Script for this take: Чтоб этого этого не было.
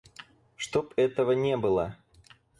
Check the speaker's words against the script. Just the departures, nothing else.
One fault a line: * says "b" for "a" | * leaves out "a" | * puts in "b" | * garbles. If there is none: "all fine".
* leaves out "этого"